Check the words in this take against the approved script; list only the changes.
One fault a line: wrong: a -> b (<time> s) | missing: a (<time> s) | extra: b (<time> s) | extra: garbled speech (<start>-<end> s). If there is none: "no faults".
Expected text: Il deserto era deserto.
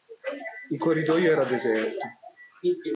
wrong: deserto -> corridoio (0.8 s)